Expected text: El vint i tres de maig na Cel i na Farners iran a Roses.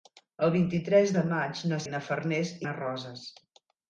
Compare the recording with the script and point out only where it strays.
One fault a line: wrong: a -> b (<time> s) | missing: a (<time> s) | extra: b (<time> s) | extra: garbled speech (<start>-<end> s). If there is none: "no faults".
missing: Cel (1.8 s)
missing: iran (2.5 s)